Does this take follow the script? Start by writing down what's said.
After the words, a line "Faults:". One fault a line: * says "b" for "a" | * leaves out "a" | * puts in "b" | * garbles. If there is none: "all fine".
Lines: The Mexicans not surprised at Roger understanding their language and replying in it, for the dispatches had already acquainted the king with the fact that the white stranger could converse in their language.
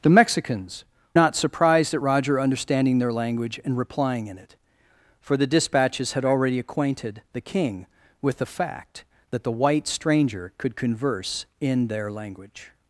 The Mexicans not surprised at Roger understanding their language and replying in it, for the dispatches had already acquainted the king with the fact that the white stranger could converse in their language.
Faults:
all fine